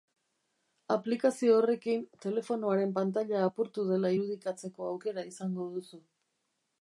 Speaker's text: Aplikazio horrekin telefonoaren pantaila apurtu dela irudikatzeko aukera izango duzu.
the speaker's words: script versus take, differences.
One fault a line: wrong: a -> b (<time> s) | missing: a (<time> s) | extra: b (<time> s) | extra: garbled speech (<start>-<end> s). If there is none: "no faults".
no faults